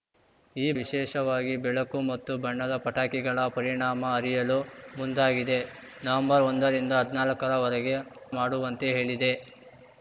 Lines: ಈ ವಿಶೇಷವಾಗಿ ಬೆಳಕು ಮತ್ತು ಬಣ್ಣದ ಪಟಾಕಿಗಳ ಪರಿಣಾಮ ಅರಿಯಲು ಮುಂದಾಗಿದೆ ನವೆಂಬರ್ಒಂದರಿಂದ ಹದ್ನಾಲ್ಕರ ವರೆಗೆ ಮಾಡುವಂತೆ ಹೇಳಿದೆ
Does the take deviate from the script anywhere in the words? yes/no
no